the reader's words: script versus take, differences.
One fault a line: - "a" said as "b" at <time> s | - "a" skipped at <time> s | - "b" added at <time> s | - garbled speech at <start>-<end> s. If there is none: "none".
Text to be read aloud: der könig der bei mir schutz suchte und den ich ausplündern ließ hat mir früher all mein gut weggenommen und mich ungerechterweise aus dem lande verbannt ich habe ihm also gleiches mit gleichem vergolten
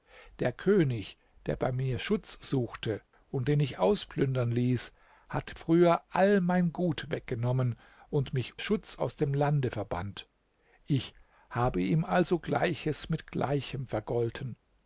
- "mir" skipped at 5.6 s
- "ungerechterweise" said as "schutz" at 8.6 s